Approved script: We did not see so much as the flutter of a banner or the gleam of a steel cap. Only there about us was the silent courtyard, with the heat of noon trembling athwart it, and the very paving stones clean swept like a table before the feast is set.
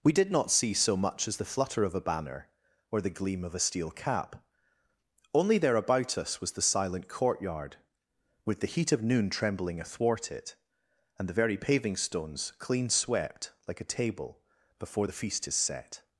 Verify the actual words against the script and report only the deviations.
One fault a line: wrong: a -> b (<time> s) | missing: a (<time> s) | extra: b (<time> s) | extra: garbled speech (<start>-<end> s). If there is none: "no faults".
no faults